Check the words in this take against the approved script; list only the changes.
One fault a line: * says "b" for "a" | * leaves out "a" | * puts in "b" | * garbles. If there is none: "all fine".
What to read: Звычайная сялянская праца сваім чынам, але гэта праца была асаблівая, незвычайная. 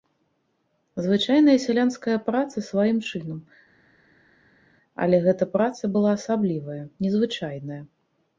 all fine